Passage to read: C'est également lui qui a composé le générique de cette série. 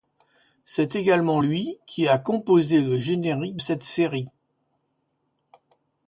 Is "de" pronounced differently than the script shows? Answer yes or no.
yes